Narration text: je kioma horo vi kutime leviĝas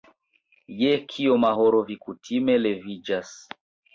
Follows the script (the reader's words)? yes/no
yes